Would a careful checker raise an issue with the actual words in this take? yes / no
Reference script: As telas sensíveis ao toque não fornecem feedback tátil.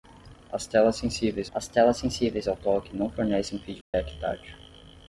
yes